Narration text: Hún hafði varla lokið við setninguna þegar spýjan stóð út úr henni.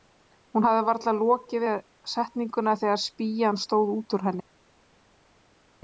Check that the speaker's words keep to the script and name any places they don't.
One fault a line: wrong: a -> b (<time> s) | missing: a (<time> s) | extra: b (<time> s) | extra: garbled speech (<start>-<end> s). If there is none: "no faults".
no faults